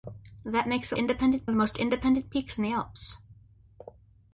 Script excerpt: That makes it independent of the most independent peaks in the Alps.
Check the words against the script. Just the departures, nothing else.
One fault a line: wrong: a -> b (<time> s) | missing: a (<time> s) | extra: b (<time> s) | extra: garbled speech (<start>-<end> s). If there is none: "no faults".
no faults